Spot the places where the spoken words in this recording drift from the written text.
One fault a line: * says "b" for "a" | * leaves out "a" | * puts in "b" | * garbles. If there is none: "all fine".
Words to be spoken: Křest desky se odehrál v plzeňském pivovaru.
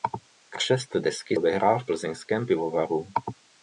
* leaves out "se"